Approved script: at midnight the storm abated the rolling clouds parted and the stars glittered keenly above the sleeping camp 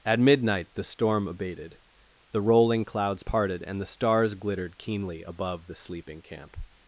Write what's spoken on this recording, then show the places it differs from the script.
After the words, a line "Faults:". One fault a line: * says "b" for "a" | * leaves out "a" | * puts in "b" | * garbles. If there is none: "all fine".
at midnight the storm abated the rolling clouds parted and the stars glittered keenly above the sleeping camp
Faults:
all fine